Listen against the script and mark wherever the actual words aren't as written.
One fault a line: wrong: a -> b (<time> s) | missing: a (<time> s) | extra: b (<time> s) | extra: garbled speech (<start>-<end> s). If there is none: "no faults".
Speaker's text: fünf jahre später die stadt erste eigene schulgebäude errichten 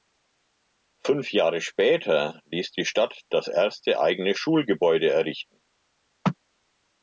extra: ließ (2.5 s)
extra: das (3.3 s)